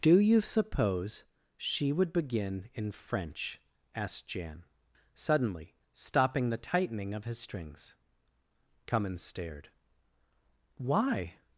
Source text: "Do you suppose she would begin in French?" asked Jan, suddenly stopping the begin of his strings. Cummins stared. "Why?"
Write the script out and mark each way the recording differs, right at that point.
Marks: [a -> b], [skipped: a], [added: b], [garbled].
"Do you suppose she would begin in French?" asked Jan, suddenly stopping the [begin -> tightening] of his strings. Cummins stared. "Why?"